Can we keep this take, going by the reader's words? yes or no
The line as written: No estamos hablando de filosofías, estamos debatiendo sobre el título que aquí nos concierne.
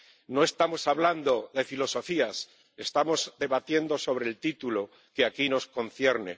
yes